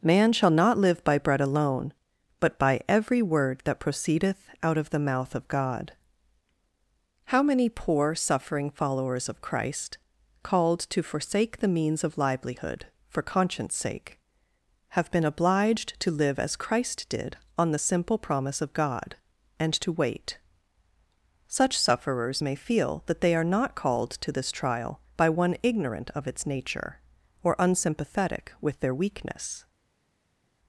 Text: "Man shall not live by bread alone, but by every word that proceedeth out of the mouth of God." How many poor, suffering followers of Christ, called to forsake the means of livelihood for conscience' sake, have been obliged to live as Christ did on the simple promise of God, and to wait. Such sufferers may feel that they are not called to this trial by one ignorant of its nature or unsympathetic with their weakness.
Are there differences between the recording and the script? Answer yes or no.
no